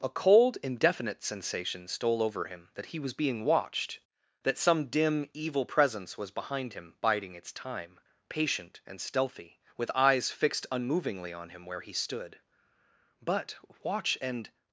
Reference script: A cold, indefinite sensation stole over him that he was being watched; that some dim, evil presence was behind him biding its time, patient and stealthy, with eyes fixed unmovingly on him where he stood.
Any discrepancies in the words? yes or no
yes